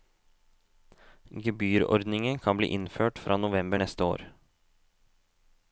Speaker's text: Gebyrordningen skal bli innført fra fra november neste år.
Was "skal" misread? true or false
true